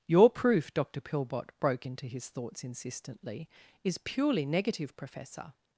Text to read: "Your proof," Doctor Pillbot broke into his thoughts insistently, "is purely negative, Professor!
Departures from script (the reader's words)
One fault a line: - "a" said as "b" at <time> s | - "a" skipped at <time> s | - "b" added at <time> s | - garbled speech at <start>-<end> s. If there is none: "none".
none